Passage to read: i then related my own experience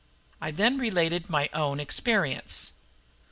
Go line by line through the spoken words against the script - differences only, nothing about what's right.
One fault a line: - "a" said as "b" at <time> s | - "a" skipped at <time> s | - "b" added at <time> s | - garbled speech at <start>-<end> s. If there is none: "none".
none